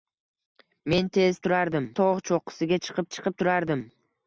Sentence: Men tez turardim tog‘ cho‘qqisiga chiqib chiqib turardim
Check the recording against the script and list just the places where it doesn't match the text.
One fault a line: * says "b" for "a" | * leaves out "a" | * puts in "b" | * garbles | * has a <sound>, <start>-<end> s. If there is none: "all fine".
all fine